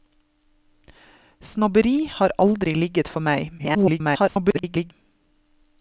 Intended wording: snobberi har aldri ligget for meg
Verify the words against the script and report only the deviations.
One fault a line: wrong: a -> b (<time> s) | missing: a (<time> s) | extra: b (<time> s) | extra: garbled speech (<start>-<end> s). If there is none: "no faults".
extra: garbled speech (3.6-4.9 s)